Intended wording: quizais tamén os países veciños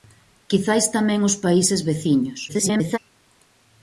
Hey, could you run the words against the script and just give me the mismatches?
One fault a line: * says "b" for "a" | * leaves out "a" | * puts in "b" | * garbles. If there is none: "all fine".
* garbles